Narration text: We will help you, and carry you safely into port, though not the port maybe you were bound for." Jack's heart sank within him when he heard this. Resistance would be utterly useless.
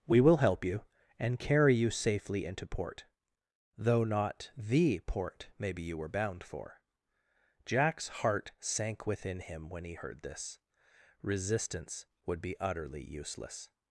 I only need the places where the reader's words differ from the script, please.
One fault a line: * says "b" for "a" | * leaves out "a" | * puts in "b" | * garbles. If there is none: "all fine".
all fine